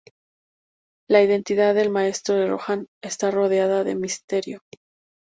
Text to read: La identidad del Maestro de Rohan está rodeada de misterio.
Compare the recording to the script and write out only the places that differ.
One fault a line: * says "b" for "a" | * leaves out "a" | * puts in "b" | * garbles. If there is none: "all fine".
all fine